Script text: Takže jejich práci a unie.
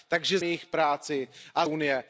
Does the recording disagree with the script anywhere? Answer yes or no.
no